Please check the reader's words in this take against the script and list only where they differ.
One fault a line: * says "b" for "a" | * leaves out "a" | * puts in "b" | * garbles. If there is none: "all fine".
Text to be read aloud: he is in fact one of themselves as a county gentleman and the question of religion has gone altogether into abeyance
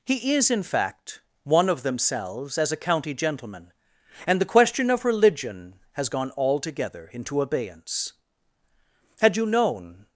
* puts in "had you known"